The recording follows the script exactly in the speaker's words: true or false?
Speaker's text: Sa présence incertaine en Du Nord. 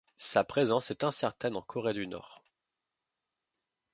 false